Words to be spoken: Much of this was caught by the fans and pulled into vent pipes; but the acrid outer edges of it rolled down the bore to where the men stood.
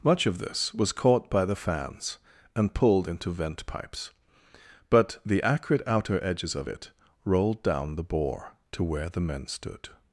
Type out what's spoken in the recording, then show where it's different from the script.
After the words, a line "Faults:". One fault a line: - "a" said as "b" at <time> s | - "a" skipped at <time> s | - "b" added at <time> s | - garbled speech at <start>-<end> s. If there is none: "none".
Much of this was caught by the fans and pulled into vent pipes; but the acrid outer edges of it rolled down the bore to where the men stood.
Faults:
none